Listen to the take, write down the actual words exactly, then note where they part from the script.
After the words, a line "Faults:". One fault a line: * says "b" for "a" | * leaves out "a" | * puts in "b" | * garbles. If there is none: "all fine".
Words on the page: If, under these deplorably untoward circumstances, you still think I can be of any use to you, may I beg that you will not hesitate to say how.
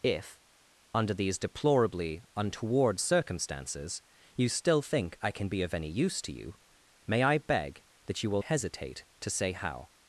If, under these deplorably untoward circumstances, you still think I can be of any use to you, may I beg that you will hesitate to say how.
Faults:
* leaves out "not"